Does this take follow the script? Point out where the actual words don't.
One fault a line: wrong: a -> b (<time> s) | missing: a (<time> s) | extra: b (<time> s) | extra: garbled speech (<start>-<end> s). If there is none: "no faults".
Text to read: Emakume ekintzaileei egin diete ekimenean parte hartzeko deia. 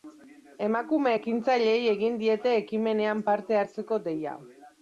no faults